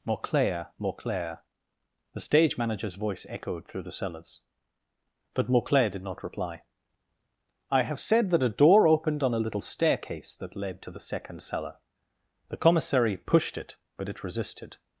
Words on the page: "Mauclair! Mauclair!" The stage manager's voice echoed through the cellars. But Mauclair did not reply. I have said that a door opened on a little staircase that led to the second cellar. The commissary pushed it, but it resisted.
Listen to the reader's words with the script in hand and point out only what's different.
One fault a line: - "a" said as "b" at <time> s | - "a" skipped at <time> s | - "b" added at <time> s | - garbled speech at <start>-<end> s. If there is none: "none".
none